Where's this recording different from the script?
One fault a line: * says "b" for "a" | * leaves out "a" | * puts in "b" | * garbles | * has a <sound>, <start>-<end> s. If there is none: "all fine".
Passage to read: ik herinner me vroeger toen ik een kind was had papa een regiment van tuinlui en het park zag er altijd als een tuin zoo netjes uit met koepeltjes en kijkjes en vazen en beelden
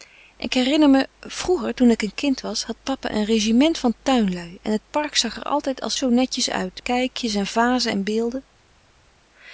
* leaves out "een tuin"
* leaves out "met koepeltjes en"